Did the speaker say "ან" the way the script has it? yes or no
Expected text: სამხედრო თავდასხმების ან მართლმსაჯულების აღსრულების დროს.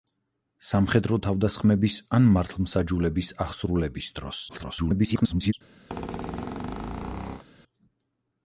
yes